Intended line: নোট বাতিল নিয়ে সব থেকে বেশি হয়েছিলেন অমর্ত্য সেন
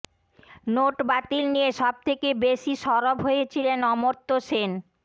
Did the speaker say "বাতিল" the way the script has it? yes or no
yes